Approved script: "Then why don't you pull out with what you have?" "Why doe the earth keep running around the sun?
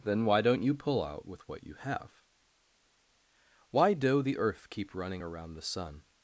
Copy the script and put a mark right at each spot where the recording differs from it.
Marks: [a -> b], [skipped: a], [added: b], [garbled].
"Then why don't you pull out with what you have?" "Why doe the earth keep running around the sun?